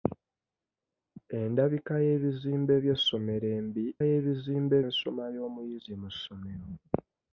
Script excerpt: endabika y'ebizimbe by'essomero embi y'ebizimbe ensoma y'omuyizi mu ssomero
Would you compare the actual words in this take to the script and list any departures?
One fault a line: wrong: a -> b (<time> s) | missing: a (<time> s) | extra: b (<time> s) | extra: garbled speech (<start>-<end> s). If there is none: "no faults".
no faults